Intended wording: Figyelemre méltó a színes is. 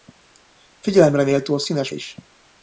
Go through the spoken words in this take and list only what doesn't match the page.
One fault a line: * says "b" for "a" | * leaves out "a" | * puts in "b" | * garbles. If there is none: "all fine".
all fine